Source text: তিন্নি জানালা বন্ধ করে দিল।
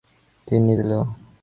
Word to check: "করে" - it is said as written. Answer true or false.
false